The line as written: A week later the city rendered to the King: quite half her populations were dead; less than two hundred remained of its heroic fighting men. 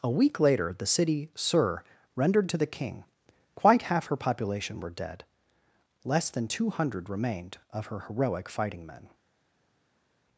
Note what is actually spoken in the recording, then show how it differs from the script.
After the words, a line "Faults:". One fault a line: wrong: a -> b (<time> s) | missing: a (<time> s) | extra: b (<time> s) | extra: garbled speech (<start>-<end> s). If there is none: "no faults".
A week later the city sur rendered to the King: quite half her population were dead; less than two hundred remained of her heroic fighting men.
Faults:
extra: sur (1.4 s)
wrong: populations -> population (4.2 s)
wrong: its -> her (7.9 s)